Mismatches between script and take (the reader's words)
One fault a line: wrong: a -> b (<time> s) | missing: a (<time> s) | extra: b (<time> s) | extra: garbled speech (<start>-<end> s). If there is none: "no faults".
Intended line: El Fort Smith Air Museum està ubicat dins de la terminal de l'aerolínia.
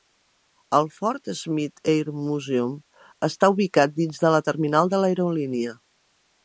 no faults